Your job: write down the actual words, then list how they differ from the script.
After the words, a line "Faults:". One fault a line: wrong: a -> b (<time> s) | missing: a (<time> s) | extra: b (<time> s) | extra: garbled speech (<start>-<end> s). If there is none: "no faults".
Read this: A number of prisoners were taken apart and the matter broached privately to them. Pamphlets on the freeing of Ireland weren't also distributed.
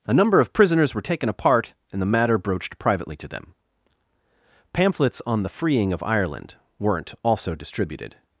A number of prisoners were taken apart and the matter broached privately to them. Pamphlets on the freeing of Ireland weren't also distributed.
Faults:
no faults